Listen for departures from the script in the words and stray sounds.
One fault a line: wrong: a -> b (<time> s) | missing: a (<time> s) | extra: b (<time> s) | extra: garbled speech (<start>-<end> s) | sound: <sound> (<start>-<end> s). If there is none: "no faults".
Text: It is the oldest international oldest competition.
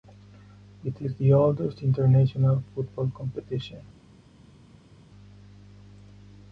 wrong: oldest -> football (2.7 s)